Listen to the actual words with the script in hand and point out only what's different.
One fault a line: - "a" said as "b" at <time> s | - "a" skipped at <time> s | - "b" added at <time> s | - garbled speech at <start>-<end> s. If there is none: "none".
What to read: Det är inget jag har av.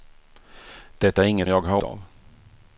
none